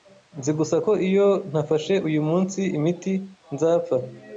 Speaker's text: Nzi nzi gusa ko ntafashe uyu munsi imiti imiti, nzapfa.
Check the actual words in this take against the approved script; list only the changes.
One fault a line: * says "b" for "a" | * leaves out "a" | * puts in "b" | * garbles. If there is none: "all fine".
* leaves out "nzi"
* puts in "iyo"
* leaves out "imiti"